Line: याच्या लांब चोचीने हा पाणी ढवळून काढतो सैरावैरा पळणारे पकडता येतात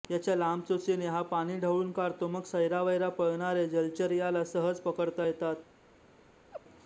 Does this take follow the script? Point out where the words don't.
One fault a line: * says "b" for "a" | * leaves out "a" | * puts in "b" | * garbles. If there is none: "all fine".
* puts in "मग"
* puts in "जलचर याला सहज"